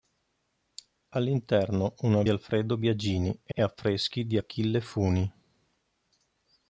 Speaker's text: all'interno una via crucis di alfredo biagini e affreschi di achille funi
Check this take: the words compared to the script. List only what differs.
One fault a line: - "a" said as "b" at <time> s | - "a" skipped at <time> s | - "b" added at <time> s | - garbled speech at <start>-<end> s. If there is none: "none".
- "via crucis di" skipped at 2.2 s
- "e" added at 3.5 s